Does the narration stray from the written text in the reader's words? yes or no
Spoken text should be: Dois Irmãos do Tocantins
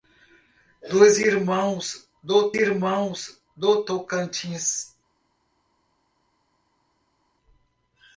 yes